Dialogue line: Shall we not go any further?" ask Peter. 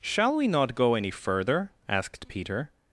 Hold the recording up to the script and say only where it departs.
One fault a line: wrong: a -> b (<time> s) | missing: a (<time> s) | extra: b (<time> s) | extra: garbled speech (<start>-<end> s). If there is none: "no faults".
wrong: ask -> asked (1.9 s)